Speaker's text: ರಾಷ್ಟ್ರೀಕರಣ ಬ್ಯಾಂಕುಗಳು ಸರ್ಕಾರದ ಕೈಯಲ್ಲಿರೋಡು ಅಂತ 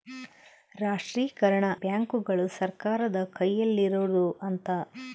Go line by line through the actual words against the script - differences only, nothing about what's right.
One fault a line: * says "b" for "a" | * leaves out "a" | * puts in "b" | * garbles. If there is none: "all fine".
all fine